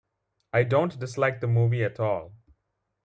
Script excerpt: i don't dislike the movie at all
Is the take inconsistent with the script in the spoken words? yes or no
no